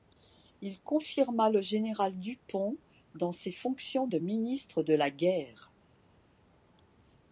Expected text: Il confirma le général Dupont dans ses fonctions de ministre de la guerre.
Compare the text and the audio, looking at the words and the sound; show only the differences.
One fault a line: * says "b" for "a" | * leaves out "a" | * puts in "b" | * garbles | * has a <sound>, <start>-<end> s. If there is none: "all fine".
all fine